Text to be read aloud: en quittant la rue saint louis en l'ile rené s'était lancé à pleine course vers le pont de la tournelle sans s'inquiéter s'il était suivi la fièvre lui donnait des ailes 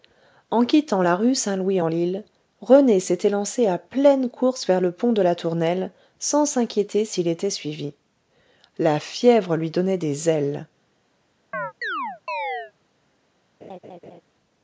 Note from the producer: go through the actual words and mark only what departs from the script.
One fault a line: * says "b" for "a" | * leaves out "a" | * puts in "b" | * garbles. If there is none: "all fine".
all fine